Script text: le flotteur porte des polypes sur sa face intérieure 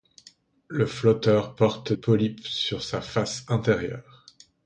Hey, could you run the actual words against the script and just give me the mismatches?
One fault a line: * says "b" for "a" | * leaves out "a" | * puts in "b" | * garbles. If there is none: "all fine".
* leaves out "des"